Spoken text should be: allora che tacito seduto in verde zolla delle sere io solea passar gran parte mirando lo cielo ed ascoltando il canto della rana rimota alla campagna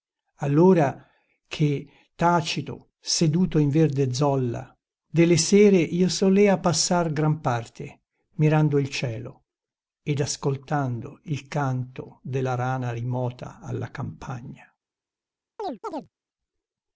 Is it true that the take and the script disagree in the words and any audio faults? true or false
true